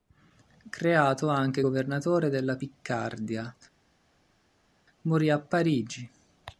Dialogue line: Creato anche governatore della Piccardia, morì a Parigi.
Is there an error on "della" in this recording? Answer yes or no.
no